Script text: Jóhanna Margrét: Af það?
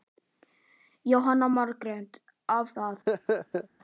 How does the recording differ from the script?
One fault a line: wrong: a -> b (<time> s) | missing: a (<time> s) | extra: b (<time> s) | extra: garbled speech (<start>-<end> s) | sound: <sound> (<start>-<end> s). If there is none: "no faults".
sound: laugh (3.1-3.7 s)